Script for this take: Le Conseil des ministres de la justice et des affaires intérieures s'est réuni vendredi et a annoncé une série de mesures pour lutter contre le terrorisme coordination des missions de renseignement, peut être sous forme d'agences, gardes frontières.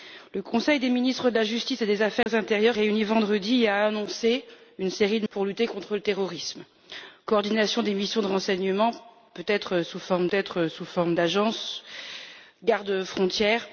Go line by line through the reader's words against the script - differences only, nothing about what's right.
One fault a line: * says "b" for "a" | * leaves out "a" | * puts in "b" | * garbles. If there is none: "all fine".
* leaves out "s'est"
* leaves out "mesures"
* puts in "être sous forme"